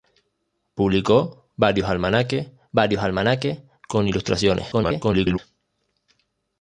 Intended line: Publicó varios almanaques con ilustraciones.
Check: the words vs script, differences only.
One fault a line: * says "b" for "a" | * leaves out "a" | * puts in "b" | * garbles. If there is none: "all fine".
* puts in "varios almanaques"
* garbles